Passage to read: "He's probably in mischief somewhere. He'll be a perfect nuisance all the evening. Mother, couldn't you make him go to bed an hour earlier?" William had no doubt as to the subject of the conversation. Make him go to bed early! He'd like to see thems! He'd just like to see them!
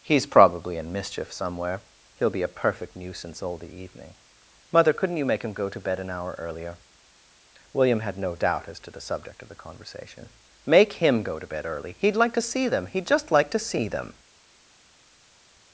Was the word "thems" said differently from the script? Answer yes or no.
yes